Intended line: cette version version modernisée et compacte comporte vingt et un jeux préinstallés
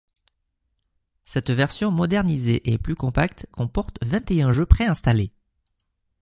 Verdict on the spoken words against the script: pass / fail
fail